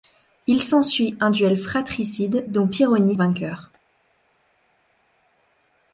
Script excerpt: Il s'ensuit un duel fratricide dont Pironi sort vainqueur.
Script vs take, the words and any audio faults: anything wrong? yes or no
yes